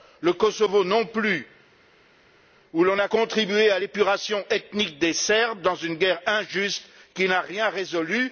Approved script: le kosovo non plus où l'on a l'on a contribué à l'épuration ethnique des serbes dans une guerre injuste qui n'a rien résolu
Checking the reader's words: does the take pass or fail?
fail